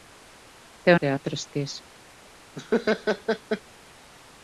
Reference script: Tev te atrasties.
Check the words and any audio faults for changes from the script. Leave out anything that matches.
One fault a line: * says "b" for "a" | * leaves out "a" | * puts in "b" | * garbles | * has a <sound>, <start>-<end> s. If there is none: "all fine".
* has a laugh, 2.6-3.6 s